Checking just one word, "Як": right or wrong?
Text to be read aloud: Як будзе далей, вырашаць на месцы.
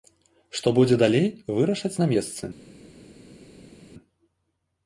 wrong